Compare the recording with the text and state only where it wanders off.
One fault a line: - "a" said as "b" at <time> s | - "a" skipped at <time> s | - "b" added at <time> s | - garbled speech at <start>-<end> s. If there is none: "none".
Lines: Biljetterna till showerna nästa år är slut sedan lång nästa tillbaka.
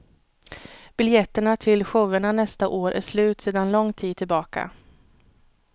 - "nästa" said as "tid" at 3.9 s